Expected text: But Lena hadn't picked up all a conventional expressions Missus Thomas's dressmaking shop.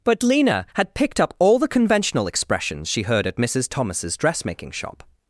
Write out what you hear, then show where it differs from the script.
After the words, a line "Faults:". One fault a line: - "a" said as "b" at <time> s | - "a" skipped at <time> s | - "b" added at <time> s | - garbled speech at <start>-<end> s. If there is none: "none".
But Lena had picked up all the conventional expressions she heard at Missus Thomas's dressmaking shop.
Faults:
- "hadn't" said as "had" at 0.7 s
- "a" said as "the" at 1.6 s
- "she heard at" added at 2.9 s